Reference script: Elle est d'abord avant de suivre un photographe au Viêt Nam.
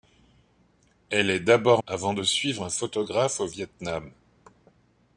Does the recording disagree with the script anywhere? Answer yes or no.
no